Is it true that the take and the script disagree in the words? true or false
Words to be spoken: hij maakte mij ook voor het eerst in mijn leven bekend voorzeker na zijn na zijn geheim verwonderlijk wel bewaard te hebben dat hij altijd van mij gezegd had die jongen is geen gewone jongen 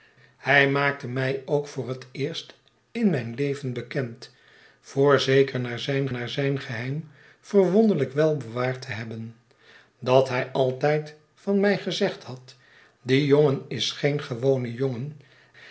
false